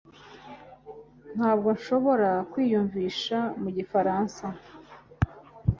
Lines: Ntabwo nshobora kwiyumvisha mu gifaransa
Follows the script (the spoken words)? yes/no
yes